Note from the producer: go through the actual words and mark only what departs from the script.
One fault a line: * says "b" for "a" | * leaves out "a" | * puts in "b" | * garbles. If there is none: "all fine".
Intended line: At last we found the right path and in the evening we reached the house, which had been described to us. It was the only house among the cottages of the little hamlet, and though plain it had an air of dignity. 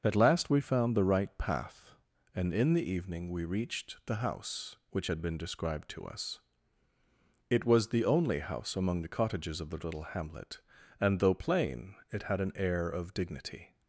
all fine